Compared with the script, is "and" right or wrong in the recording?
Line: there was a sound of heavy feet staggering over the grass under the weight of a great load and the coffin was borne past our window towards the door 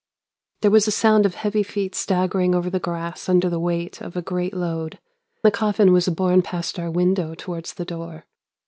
wrong